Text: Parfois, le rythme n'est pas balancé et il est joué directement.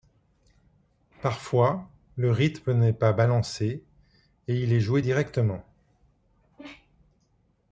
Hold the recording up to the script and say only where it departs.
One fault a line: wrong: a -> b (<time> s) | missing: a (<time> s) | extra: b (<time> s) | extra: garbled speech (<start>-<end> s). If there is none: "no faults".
no faults